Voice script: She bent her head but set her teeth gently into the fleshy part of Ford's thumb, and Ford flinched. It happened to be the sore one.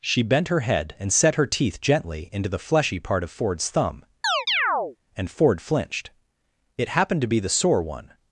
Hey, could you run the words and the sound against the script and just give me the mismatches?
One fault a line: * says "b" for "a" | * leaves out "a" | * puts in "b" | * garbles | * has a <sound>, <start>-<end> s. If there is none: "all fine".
* says "and" for "but"
* has a chirp, 4.2-5.0 s